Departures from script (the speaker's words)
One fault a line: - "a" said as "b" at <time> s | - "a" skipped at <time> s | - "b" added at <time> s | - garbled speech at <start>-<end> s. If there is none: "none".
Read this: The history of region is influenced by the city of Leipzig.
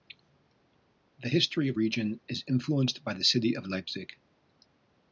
none